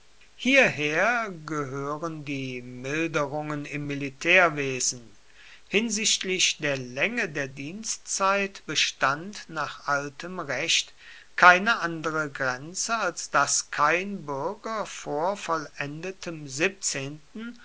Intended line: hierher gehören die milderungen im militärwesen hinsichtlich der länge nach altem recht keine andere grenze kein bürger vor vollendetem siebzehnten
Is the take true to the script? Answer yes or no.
no